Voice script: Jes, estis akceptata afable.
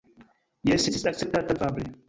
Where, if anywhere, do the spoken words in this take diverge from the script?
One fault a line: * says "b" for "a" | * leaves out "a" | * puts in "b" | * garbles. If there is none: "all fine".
all fine